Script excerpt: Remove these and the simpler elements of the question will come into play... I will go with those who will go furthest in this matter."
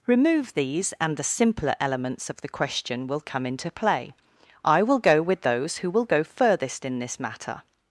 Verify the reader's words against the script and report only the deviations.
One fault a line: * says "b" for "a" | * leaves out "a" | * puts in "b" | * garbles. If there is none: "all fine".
all fine